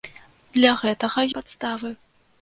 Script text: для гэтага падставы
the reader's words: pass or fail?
pass